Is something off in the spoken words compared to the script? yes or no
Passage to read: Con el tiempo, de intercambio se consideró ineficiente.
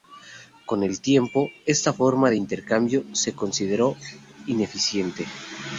yes